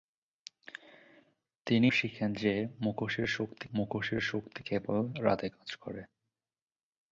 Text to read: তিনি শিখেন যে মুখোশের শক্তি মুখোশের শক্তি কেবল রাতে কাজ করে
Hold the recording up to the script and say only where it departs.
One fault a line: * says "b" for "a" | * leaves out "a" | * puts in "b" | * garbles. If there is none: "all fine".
all fine